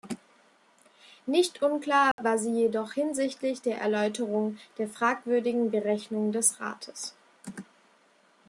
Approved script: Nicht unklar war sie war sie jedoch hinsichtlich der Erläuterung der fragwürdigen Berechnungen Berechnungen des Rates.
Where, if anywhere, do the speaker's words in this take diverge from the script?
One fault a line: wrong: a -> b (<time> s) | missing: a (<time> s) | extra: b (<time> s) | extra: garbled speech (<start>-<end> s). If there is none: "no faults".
missing: war sie (2.5 s)
missing: Berechnungen (6.3 s)